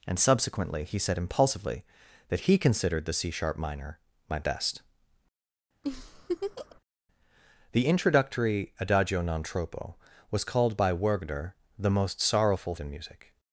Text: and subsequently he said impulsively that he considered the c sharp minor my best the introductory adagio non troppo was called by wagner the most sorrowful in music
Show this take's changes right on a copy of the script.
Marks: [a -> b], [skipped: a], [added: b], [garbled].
and subsequently he said impulsively that he considered the c sharp minor my best the introductory adagio non troppo was called by wagner the most sorrowful in music